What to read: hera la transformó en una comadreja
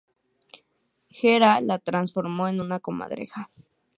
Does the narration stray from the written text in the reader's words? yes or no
no